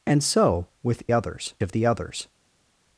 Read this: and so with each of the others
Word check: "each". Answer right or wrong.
wrong